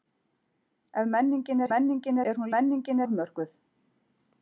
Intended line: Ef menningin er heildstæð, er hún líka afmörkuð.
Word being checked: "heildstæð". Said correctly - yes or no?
no